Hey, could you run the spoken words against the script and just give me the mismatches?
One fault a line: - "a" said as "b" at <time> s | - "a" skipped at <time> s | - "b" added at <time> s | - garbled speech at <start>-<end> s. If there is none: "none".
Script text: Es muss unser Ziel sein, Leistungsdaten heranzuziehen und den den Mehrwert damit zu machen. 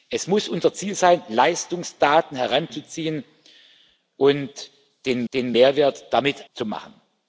none